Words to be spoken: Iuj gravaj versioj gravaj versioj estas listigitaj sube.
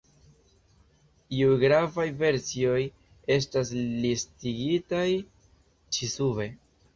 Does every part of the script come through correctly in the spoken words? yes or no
no